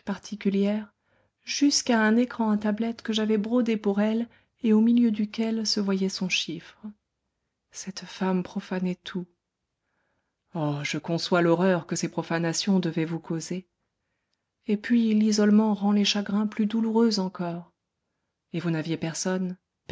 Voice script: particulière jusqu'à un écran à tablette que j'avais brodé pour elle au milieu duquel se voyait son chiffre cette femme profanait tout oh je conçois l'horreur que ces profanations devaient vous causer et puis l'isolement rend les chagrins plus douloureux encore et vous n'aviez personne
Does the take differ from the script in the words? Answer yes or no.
yes